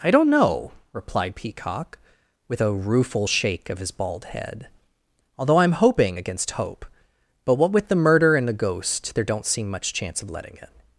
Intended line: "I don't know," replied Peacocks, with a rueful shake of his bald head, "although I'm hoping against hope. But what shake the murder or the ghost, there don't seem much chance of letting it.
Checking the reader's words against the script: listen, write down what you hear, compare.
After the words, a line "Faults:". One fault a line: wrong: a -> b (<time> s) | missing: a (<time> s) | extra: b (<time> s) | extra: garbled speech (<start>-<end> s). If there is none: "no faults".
"I don't know," replied Peacock, with a rueful shake of his bald head, "although I'm hoping against hope. But what with the murder and the ghost, there don't seem much chance of letting it.
Faults:
wrong: Peacocks -> Peacock (1.3 s)
wrong: shake -> with (7.7 s)
wrong: or -> and (8.3 s)